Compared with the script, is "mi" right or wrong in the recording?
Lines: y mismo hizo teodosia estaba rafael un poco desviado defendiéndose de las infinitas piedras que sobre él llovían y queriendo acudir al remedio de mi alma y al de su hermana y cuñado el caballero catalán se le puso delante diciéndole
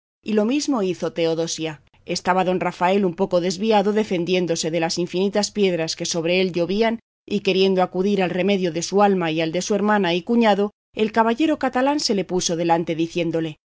wrong